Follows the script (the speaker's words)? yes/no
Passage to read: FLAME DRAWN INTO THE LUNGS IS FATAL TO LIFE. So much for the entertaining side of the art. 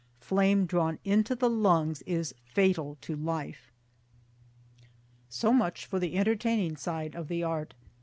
yes